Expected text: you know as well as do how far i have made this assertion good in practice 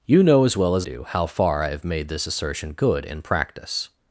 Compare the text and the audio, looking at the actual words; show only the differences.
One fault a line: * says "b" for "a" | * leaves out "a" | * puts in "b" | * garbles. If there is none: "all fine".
all fine